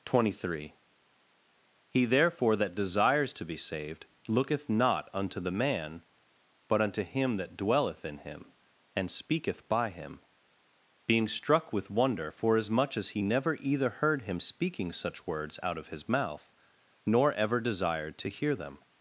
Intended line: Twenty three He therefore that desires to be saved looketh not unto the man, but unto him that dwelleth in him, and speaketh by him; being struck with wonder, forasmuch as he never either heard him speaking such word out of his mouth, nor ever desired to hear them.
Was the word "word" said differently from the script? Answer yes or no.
yes